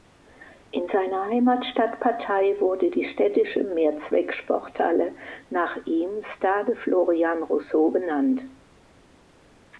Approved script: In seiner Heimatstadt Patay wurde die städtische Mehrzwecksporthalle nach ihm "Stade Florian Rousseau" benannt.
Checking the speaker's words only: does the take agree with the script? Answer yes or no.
yes